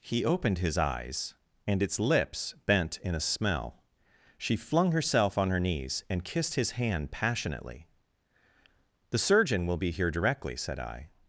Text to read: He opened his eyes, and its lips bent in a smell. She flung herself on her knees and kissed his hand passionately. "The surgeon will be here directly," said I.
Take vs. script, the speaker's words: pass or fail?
pass